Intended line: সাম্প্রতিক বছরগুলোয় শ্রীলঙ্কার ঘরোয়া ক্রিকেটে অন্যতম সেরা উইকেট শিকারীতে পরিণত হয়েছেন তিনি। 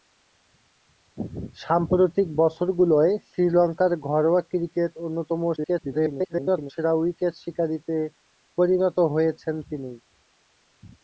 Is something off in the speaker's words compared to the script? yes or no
yes